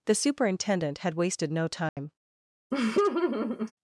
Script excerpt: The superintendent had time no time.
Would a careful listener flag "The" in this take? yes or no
no